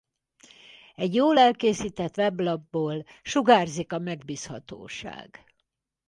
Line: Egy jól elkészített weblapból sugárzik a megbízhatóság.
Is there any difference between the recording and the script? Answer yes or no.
no